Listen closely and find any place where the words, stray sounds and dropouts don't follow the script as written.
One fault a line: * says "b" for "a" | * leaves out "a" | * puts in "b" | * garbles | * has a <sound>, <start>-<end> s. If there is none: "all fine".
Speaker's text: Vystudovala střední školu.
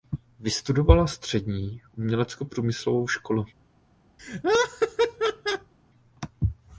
* puts in "uměleckoprůmyslovou"
* has a laugh, 4.2-5.7 s